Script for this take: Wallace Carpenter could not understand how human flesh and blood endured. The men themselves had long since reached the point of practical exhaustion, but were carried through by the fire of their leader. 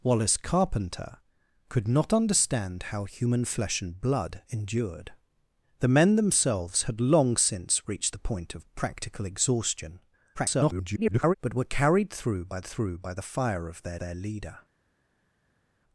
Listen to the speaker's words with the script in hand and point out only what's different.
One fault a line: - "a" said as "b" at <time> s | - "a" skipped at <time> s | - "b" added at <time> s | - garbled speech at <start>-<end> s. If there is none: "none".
- garbled speech at 10.3-11.3 s
- "through by" added at 12.6 s
- "their" added at 14.0 s